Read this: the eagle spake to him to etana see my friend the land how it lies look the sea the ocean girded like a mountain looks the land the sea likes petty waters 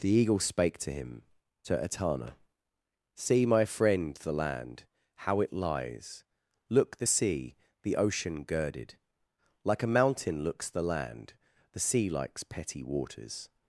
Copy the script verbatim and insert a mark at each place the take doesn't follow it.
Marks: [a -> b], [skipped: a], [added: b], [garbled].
the eagle spake to him to etana see my friend the land how it lies look the sea the ocean girded like a mountain looks the land the sea likes petty waters